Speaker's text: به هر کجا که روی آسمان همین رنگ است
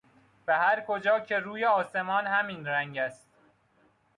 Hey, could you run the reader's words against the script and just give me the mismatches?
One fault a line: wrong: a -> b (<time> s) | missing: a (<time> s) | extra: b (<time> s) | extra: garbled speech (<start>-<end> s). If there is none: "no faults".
no faults